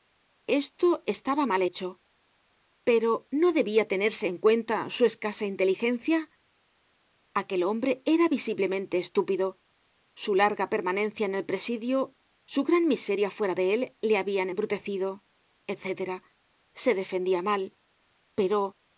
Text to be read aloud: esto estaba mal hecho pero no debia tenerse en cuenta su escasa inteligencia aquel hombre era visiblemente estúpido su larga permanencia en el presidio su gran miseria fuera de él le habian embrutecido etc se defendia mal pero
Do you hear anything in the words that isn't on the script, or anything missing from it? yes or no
no